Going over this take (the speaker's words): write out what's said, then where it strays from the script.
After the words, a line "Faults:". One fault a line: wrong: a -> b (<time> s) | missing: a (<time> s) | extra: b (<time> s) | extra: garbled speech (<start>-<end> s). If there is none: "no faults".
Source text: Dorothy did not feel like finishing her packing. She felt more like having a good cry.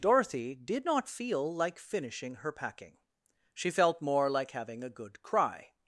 Dorothy did not feel like finishing her packing. She felt more like having a good cry.
Faults:
no faults